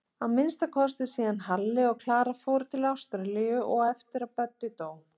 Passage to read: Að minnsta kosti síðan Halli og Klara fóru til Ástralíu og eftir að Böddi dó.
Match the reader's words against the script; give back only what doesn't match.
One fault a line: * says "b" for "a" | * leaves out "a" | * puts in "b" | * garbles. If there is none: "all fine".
all fine